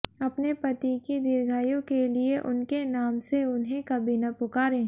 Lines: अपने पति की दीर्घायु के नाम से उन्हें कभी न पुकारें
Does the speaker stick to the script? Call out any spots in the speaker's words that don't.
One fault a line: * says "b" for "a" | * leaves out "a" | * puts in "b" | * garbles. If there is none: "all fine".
* puts in "लिए उनके"